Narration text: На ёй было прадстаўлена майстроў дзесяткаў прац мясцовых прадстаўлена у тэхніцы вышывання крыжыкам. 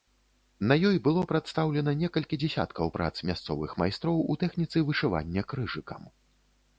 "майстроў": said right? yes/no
no